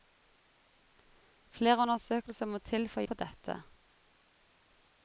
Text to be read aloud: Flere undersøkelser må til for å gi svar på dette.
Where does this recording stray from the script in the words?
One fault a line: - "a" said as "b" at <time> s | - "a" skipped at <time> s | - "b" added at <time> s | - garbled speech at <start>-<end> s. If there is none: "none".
- "gi svar" skipped at 3.0 s